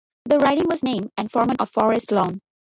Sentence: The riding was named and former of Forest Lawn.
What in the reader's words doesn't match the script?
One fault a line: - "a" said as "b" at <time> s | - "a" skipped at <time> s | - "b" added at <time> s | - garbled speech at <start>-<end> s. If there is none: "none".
none